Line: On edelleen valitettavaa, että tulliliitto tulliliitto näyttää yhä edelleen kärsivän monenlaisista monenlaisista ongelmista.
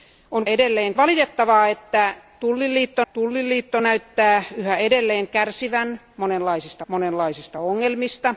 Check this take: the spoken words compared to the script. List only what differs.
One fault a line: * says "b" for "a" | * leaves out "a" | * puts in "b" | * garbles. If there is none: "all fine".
all fine